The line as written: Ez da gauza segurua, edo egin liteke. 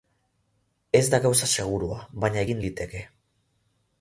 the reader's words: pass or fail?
fail